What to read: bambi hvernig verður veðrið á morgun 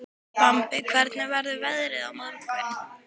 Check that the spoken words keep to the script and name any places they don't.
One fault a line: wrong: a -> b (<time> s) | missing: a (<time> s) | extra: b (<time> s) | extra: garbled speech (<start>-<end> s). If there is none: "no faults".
no faults